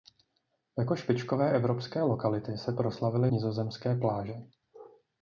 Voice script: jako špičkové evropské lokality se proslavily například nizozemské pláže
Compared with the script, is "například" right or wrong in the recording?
wrong